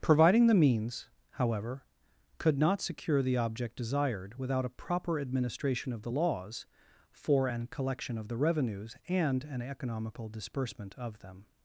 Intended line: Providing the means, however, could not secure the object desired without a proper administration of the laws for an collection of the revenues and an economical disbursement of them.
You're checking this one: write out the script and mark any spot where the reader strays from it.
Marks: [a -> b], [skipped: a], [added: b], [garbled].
Providing the means, however, could not secure the object desired without a proper administration of the laws for an collection of the revenues and an economical disbursement of them.